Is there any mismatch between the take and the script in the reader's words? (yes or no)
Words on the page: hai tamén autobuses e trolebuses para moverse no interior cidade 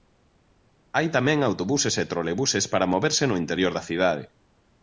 yes